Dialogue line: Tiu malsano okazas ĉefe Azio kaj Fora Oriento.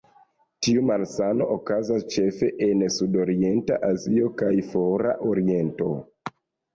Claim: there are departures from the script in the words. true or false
true